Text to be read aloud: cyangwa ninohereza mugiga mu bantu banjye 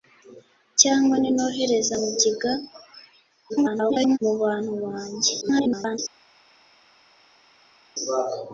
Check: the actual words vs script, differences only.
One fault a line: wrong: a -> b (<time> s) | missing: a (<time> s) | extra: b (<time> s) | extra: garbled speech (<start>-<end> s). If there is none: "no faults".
extra: garbled speech (3.5-4.2 s)
extra: garbled speech (5.4-6.0 s)